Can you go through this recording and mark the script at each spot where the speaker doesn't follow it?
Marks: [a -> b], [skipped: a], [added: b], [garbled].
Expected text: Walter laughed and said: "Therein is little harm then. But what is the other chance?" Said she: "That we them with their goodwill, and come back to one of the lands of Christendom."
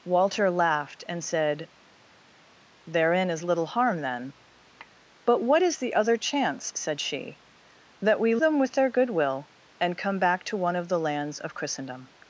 Walter laughed and said: "Therein is little harm then. But what is the other chance?" Said she: "That we them with their goodwill, and come back to one of the lands of Christendom."